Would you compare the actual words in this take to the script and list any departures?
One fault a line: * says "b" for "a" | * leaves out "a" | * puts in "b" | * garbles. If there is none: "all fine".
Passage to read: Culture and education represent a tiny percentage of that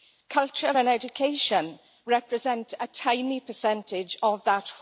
all fine